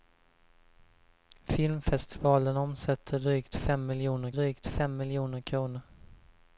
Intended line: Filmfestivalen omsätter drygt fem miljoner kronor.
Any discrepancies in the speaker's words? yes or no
yes